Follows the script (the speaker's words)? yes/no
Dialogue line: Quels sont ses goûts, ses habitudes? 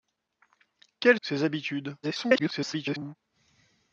no